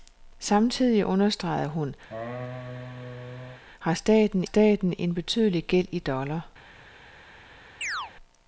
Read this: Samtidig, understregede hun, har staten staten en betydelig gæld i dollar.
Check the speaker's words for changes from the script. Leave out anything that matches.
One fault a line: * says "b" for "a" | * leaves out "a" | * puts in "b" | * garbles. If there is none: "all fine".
all fine